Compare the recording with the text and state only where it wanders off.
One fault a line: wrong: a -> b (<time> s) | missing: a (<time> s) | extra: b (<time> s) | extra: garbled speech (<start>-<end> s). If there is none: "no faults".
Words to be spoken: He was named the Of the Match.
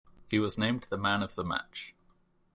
extra: Man (1.0 s)